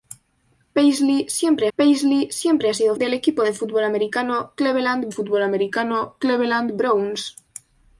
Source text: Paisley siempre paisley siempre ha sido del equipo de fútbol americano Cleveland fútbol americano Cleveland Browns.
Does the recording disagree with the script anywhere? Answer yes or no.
no